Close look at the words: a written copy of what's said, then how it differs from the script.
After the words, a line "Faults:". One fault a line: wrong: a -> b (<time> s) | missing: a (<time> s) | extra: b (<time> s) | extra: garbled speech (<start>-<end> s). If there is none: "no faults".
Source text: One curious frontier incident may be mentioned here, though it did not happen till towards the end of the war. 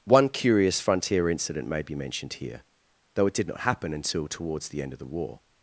One curious frontier incident may be mentioned here, though it did not happen until towards the end of the war.
Faults:
wrong: till -> until (3.9 s)